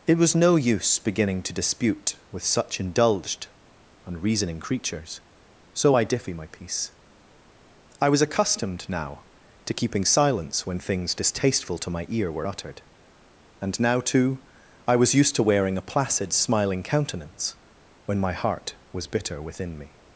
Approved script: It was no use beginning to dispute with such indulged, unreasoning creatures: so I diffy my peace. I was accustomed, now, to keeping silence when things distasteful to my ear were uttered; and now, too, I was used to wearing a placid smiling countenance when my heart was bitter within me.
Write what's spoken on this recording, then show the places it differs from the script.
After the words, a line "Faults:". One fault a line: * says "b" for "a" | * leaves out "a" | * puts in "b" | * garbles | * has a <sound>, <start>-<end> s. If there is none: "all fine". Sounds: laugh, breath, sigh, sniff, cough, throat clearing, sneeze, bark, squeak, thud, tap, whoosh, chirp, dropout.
It was no use beginning to dispute with such indulged, unreasoning creatures: so I diffy my peace. I was accustomed, now, to keeping silence when things distasteful to my ear were uttered; and now, too, I was used to wearing a placid smiling countenance when my heart was bitter within me.
Faults:
all fine